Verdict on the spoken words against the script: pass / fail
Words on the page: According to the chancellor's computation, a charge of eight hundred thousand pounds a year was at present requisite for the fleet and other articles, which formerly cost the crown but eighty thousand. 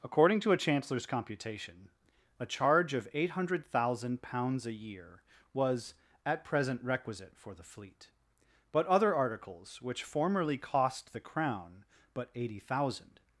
fail